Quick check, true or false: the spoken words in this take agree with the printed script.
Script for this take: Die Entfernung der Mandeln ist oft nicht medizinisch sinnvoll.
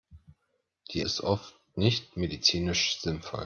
false